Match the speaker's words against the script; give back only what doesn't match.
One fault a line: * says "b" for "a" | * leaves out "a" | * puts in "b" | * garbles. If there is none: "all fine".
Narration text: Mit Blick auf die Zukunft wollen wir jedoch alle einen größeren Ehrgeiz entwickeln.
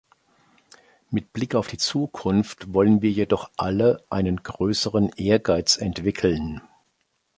all fine